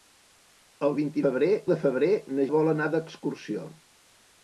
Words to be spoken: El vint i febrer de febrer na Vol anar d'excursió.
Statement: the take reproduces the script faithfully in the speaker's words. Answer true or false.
true